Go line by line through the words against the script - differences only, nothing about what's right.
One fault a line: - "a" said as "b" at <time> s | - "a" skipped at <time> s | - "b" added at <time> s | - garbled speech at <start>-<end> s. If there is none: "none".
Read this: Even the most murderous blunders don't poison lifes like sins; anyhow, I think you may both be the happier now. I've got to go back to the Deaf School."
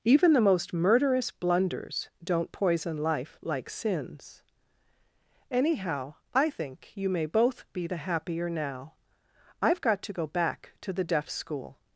- "lifes" said as "life" at 3.0 s